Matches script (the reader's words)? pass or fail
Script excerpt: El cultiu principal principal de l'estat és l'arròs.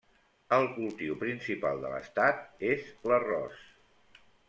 fail